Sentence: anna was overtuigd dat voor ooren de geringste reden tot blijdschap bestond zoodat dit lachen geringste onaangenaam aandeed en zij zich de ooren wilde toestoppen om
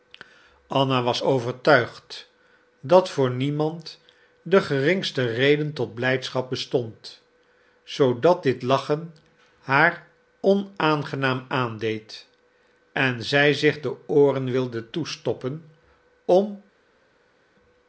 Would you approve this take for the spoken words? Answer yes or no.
no